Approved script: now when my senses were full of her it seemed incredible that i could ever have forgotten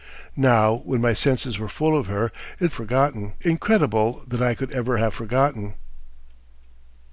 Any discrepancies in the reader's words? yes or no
yes